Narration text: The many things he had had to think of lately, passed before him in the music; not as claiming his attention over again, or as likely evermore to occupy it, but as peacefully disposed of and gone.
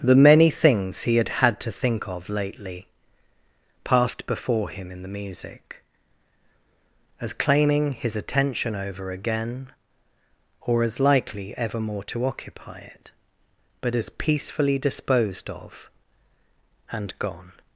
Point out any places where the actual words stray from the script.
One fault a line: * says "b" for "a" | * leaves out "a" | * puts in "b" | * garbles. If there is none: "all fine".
* leaves out "not"